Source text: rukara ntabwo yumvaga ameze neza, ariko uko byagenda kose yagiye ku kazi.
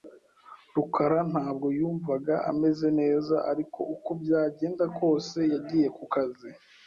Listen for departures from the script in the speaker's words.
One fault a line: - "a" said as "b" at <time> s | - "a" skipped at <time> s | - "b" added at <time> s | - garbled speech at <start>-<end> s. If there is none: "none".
none